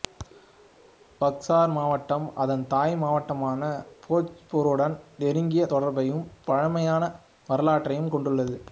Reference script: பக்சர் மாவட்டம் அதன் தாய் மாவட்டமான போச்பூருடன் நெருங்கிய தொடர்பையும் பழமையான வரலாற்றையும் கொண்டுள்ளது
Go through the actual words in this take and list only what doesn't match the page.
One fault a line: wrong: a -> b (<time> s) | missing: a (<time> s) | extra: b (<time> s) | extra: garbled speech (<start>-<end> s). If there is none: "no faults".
no faults